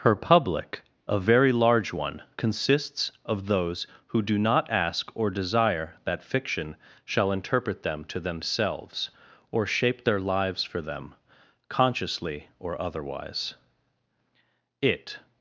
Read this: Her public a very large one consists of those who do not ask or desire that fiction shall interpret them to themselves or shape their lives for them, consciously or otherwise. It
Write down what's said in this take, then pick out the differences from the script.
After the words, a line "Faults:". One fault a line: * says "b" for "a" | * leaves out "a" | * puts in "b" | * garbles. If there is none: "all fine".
Her public a very large one consists of those who do not ask or desire that fiction shall interpret them to themselves or shape their lives for them, consciously or otherwise. It
Faults:
all fine